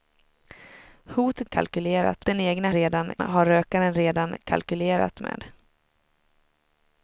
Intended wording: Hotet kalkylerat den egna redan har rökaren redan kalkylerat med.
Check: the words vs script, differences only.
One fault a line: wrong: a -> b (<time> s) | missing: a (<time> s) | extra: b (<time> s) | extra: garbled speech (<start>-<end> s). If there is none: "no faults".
no faults